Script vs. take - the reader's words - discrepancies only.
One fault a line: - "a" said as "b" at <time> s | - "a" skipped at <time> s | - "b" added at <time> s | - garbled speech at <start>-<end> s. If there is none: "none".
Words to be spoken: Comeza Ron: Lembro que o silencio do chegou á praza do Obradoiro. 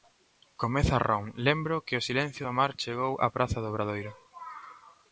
- "mar" added at 2.6 s